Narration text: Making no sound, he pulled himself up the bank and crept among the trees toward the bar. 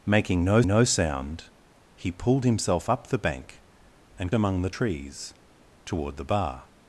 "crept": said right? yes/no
no